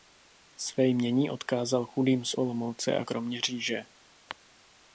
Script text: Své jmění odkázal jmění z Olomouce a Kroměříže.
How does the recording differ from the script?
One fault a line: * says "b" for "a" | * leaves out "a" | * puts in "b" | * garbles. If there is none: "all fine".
* says "chudým" for "jmění"